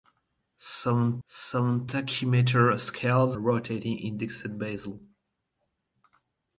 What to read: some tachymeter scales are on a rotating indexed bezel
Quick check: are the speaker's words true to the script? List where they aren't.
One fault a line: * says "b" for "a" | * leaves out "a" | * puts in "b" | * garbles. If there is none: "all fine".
* puts in "some"
* leaves out "are on"